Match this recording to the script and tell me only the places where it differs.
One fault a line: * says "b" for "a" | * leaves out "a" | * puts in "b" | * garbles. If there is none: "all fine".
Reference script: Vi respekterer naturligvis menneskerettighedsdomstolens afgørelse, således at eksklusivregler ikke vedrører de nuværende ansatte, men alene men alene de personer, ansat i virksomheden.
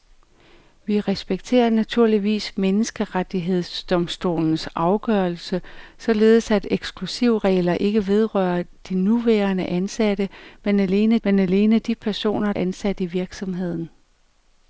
all fine